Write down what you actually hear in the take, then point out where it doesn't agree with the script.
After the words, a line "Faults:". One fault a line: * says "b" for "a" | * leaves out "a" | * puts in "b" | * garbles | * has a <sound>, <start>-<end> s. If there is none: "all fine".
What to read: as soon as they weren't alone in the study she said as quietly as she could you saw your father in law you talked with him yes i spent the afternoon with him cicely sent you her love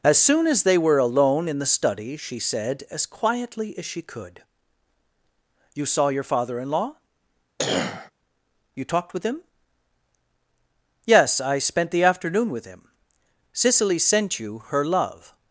as soon as they were alone in the study she said as quietly as she could you saw your father in law you talked with him yes i spent the afternoon with him cicely sent you her love
Faults:
* says "were" for "weren't"
* has a cough, 7.6-8.1 s